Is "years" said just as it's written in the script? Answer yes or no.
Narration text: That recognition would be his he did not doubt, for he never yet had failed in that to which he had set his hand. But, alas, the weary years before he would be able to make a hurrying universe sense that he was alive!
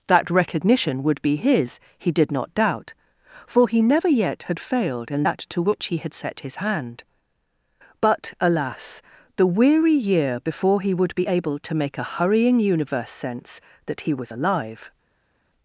no